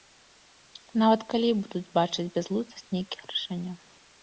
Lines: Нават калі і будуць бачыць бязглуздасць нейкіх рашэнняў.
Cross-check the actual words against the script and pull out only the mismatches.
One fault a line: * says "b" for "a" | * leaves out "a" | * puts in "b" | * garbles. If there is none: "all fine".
all fine